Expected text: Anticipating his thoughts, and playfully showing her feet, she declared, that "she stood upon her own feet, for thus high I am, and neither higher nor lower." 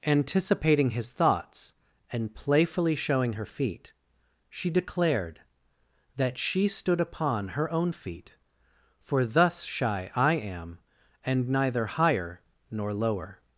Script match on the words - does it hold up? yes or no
no